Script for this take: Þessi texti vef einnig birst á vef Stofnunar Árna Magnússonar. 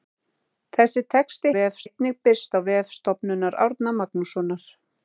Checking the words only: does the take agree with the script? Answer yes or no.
yes